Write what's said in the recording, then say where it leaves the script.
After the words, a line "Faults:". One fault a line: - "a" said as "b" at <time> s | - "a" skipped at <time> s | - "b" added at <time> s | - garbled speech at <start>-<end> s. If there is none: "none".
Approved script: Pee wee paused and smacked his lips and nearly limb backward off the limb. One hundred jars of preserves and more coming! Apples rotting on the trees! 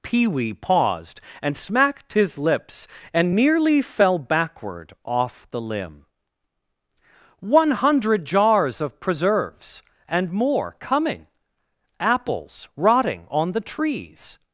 Pee wee paused and smacked his lips and nearly fell backward off the limb. One hundred jars of preserves and more coming! Apples rotting on the trees!
Faults:
- "limb" said as "fell" at 3.8 s